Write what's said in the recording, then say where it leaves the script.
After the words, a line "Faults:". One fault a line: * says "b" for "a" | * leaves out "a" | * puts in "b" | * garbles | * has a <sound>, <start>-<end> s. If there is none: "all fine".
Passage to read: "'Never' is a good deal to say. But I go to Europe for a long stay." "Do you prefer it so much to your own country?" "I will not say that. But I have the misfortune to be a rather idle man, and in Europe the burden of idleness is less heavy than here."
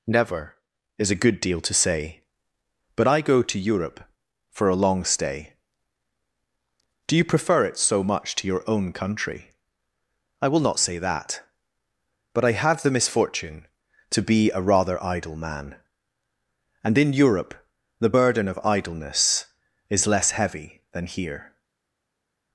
"'Never' is a good deal to say. But I go to Europe for a long stay." "Do you prefer it so much to your own country?" "I will not say that. But I have the misfortune to be a rather idle man, and in Europe the burden of idleness is less heavy than here."
Faults:
all fine